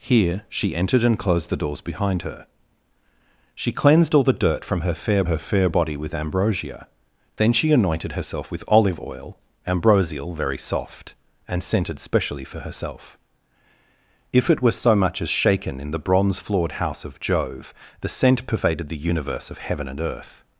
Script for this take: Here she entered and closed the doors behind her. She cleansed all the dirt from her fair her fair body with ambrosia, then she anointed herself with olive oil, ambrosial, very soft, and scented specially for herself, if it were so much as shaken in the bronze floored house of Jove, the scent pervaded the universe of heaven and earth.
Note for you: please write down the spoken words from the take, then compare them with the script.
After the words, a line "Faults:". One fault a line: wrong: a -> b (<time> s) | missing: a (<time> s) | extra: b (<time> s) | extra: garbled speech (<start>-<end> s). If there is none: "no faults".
Here she entered and closed the doors behind her. She cleansed all the dirt from her fair her fair body with ambrosia, then she anointed herself with olive oil, ambrosial, very soft, and scented specially for herself, if it were so much as shaken in the bronze floored house of Jove, the scent pervaded the universe of heaven and earth.
Faults:
no faults